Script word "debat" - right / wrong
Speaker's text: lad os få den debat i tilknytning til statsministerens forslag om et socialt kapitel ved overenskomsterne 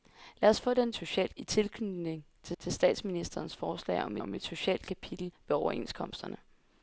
wrong